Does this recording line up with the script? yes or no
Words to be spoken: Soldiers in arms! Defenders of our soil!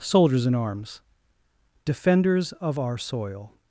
yes